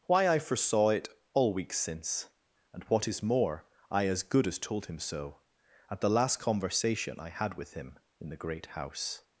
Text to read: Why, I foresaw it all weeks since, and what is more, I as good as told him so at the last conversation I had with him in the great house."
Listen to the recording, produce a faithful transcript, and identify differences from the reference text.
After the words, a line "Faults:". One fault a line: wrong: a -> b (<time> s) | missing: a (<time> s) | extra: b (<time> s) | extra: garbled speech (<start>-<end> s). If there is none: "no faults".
Why, I foresaw it all weeks since, and what is more, I as good as told him so at the last conversation I had with him in the great house."
Faults:
no faults